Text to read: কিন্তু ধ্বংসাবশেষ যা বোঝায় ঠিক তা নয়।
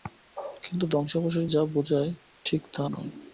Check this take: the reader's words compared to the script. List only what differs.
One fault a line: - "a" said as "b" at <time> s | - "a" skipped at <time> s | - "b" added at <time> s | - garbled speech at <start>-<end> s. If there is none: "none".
none